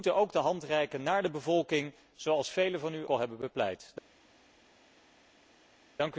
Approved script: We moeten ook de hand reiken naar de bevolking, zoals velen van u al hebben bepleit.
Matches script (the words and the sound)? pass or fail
pass